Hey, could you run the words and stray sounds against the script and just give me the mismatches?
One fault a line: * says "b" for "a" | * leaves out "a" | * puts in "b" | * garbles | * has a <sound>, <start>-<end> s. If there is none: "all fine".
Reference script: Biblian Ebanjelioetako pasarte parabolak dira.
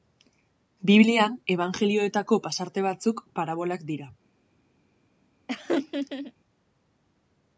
* puts in "batzuk"
* has a laugh, 5.5-6.3 s